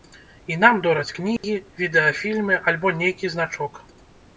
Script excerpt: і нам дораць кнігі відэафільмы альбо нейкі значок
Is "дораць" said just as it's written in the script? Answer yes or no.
yes